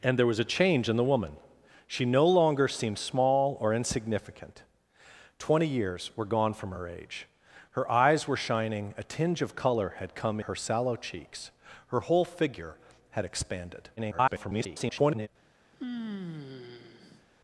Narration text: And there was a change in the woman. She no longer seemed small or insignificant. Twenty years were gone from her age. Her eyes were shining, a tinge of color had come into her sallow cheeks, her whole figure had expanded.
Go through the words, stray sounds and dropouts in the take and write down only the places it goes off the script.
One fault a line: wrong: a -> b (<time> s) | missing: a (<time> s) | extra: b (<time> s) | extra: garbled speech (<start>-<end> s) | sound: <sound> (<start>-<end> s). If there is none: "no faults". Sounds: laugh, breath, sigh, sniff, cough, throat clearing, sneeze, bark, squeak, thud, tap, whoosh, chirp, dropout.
missing: into (10.4 s)
extra: garbled speech (14.0-15.3 s)
sound: sigh (15.7-17.3 s)